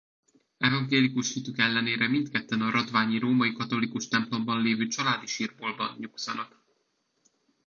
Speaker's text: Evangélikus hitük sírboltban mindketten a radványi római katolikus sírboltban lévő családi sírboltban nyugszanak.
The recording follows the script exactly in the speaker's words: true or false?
false